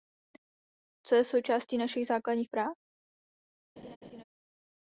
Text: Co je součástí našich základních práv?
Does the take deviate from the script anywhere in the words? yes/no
no